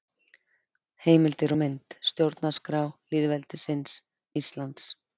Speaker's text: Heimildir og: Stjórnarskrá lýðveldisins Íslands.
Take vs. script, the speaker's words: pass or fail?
fail